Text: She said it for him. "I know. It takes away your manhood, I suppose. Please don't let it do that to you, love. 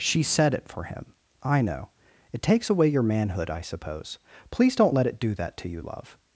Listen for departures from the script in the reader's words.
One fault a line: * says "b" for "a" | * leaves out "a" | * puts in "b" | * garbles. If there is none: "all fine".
all fine